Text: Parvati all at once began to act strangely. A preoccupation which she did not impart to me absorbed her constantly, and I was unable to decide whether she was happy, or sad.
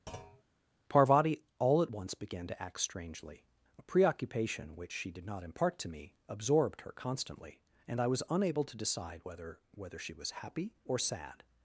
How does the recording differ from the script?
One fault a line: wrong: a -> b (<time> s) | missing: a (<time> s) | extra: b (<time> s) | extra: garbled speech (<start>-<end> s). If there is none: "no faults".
extra: whether (9.7 s)